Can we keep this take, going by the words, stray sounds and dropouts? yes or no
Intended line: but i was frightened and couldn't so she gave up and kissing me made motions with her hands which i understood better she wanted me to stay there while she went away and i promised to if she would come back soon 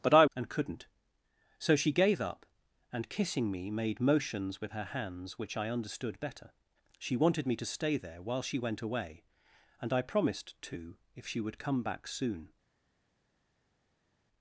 no